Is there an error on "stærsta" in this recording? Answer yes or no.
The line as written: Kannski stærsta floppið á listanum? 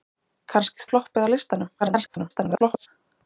yes